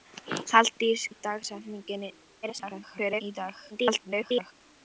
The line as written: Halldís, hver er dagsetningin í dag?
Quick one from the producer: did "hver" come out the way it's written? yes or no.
no